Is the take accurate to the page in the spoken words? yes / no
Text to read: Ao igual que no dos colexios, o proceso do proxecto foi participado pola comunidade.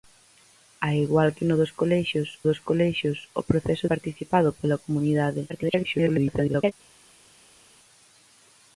no